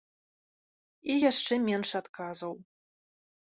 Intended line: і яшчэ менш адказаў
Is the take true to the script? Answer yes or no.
yes